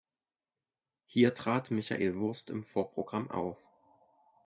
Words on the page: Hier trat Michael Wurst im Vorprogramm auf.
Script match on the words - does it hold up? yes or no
yes